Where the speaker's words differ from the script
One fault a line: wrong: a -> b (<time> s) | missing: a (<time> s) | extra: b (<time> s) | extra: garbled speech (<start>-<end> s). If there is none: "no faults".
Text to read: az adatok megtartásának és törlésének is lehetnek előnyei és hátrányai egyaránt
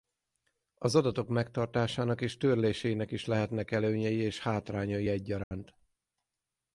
no faults